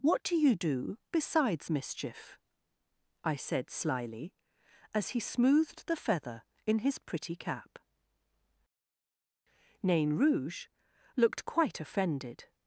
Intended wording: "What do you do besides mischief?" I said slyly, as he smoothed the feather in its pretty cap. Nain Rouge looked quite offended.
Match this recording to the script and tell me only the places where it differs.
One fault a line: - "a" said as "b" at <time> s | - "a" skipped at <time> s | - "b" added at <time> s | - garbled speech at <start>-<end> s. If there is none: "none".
- "its" said as "his" at 6.8 s